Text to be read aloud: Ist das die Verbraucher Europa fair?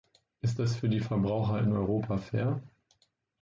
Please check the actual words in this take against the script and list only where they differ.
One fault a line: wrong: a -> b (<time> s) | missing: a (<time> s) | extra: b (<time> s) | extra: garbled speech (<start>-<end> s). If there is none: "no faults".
extra: für (0.8 s)
extra: in (1.6 s)